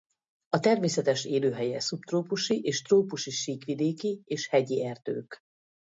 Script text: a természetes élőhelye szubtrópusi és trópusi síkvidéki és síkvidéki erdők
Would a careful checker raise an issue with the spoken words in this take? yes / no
yes